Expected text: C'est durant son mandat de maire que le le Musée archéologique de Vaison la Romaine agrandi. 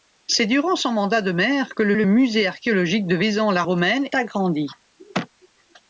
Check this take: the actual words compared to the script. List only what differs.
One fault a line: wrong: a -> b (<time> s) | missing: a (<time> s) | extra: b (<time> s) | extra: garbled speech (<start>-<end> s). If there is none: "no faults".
no faults